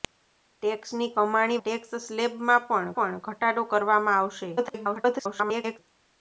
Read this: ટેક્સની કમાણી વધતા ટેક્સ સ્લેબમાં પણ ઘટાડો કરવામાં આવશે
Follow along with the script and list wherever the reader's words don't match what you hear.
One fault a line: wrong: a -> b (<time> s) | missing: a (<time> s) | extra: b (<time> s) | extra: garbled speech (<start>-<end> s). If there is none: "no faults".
missing: વધતા (1.6 s)
extra: પણ (2.9 s)
extra: garbled speech (4.6-5.8 s)